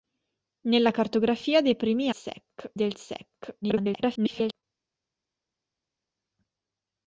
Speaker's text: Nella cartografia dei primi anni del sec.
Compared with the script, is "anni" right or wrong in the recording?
wrong